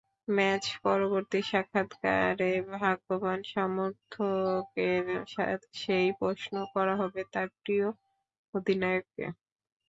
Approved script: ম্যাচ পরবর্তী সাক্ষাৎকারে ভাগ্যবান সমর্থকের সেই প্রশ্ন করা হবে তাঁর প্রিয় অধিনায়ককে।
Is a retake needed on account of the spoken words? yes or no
no